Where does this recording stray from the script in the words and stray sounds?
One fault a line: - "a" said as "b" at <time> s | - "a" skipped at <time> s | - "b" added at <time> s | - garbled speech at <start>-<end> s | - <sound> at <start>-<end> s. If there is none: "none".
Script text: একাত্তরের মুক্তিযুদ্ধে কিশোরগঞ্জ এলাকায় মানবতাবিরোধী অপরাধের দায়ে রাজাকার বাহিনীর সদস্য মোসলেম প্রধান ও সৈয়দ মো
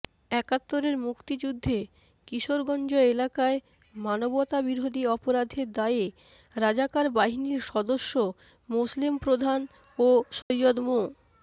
- dropout at 10.4-10.5 s